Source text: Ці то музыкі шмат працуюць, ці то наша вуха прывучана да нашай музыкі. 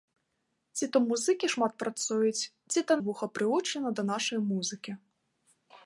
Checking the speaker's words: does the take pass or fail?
fail